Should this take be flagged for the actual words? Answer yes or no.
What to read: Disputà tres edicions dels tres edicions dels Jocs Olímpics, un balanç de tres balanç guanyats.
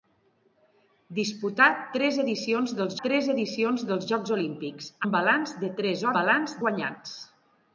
no